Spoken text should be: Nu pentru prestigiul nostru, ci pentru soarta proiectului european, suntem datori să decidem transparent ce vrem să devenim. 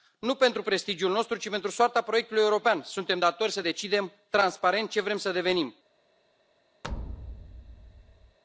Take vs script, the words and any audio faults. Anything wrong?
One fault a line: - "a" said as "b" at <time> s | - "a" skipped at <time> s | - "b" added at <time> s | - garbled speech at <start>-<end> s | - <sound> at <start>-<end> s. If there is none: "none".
- thud at 6.8-8.4 s